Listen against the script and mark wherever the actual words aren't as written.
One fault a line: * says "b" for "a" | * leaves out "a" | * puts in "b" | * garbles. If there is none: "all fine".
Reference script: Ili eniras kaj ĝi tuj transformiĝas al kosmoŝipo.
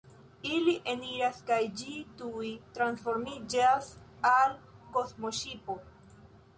all fine